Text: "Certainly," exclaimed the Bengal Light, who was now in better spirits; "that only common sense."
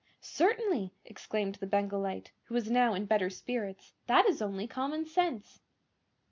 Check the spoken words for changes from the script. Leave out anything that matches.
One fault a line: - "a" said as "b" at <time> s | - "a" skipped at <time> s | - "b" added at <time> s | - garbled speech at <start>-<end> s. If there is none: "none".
- "is" added at 4.2 s